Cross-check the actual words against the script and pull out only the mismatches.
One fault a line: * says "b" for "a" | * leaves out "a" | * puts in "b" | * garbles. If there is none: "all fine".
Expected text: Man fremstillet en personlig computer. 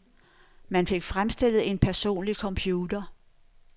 * puts in "fik"